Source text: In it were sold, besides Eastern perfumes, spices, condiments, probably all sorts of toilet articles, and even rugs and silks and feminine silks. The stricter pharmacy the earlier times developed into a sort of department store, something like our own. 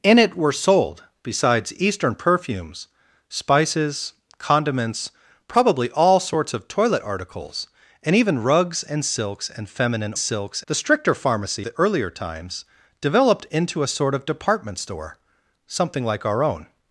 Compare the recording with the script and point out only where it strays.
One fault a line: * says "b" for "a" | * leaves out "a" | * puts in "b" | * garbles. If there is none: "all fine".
all fine